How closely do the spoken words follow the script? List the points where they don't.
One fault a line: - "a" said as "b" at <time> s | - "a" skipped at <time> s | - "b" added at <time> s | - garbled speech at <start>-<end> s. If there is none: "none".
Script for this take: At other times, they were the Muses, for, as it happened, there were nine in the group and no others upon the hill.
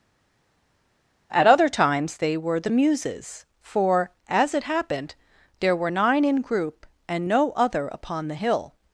- "the" skipped at 6.4 s
- "others" said as "other" at 7.5 s